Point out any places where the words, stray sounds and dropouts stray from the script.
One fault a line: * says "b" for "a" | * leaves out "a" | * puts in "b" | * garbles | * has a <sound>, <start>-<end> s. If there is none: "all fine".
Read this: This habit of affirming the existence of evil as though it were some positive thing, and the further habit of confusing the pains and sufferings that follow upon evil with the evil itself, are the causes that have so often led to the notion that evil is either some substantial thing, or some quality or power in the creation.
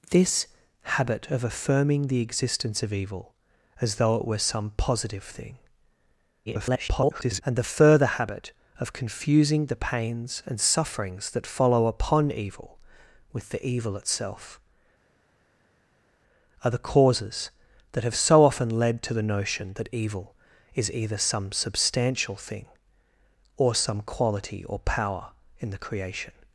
* garbles